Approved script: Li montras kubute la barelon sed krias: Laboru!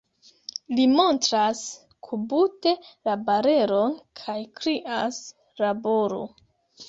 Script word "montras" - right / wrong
right